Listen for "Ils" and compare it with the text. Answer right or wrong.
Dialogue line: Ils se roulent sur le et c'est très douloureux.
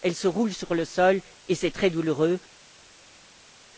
wrong